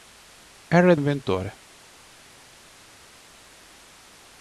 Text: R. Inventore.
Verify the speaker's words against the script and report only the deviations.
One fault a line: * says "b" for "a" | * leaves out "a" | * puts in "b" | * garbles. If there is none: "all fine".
all fine